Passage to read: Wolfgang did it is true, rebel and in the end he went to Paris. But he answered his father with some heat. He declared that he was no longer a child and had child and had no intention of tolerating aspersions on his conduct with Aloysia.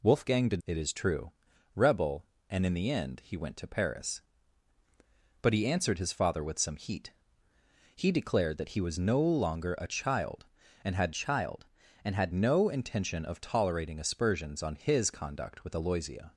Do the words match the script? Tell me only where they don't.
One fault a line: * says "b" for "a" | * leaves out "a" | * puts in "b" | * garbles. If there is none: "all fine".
all fine